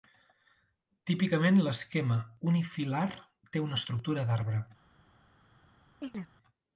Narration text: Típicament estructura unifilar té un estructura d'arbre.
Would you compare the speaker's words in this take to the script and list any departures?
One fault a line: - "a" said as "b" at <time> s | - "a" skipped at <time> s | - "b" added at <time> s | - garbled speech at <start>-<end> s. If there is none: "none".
- "estructura" said as "l'esquema" at 1.7 s
- "un" said as "una" at 3.7 s